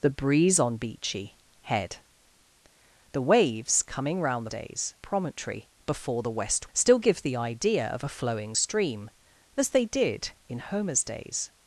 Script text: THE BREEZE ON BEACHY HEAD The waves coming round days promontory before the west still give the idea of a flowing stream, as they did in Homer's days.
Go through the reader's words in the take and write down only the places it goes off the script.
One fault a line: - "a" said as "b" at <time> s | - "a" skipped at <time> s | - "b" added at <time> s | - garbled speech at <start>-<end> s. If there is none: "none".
none